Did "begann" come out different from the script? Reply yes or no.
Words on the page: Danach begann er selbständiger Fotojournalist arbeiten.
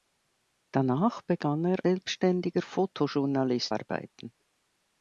no